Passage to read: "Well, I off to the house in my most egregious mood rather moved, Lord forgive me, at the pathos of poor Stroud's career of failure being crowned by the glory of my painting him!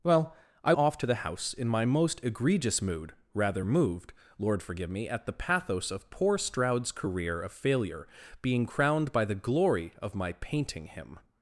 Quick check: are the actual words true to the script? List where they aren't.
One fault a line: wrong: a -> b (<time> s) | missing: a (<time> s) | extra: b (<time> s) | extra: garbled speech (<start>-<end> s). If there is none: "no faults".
no faults